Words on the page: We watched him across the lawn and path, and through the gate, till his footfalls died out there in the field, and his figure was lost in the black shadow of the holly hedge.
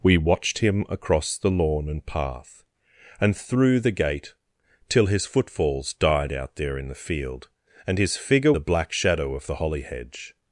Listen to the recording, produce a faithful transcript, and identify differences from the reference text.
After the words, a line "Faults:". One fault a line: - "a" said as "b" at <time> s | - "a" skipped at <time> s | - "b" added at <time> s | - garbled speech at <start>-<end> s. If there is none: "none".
We watched him across the lawn and path, and through the gate, till his footfalls died out there in the field, and his figure the black shadow of the holly hedge.
Faults:
- "was lost in" skipped at 8.5 s